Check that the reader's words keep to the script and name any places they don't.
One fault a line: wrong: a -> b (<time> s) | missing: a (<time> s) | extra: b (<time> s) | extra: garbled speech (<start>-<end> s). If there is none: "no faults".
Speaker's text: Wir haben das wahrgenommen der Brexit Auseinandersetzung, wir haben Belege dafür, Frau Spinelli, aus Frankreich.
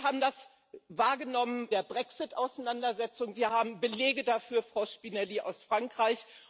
no faults